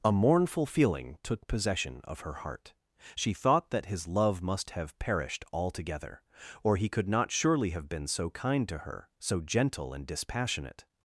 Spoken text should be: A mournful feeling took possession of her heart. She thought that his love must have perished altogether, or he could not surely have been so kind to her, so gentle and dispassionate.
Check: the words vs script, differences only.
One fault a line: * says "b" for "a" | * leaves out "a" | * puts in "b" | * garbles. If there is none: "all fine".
all fine